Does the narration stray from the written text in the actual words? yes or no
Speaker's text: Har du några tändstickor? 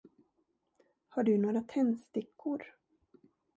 no